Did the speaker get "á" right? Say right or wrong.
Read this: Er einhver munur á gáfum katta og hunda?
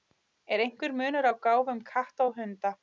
right